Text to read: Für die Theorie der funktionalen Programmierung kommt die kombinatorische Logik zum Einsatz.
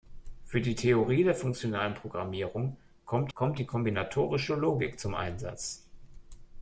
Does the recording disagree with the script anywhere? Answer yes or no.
yes